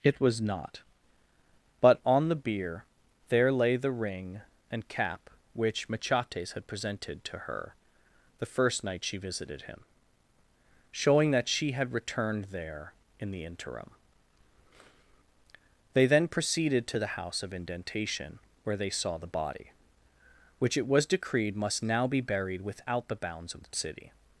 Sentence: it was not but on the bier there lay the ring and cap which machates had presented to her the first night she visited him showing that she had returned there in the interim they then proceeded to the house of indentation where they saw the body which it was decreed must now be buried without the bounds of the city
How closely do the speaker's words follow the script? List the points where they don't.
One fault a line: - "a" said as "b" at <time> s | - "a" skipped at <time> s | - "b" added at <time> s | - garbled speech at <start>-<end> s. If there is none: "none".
none